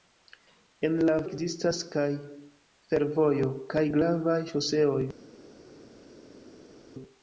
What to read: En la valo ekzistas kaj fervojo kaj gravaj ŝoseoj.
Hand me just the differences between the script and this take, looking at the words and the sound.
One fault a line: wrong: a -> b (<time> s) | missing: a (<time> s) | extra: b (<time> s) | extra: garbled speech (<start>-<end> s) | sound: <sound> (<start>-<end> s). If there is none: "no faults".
missing: valo (1.2 s)